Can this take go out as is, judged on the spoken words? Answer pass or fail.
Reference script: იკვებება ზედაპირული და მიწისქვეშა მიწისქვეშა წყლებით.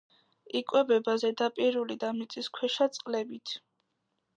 fail